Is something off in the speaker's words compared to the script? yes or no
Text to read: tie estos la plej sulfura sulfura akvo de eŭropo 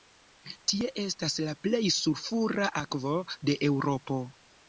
yes